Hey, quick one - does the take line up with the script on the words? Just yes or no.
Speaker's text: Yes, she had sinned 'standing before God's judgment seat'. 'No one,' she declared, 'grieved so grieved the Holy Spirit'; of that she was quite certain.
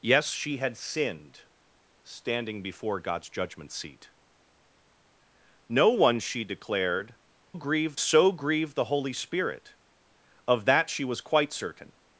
yes